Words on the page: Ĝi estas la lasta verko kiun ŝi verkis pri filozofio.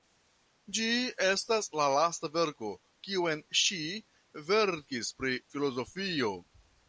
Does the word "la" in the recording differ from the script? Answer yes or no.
no